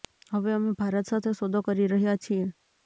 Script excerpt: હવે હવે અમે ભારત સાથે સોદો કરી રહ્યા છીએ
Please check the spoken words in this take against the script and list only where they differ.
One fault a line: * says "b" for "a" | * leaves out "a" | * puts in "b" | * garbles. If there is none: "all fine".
* leaves out "હવે"